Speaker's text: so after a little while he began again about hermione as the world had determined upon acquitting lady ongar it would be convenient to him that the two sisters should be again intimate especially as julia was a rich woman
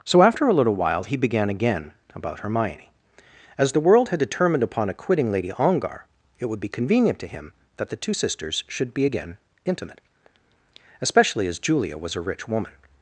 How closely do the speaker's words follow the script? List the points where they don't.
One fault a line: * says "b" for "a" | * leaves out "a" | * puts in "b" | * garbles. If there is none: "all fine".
all fine